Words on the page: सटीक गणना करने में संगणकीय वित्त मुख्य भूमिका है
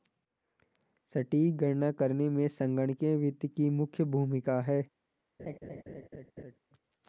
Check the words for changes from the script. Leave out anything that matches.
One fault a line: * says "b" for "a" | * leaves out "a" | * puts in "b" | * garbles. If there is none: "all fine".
* puts in "की"